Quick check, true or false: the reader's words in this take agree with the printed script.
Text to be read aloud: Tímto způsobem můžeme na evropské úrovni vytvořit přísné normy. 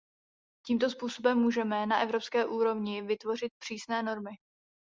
true